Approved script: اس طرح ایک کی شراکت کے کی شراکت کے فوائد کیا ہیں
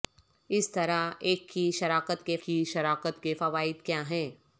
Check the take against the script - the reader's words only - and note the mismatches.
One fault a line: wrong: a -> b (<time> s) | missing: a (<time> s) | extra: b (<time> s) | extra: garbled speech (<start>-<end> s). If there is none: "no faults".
no faults